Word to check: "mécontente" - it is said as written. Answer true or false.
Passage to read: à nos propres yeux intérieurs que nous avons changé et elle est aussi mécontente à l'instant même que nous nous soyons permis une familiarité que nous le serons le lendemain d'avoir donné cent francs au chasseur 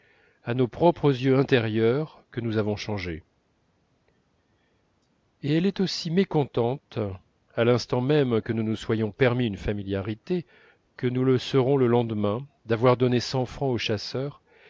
true